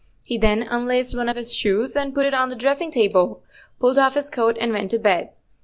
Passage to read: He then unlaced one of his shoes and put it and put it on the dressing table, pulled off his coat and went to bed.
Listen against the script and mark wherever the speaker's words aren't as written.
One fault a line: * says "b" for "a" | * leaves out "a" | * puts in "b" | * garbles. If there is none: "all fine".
* leaves out "and put it"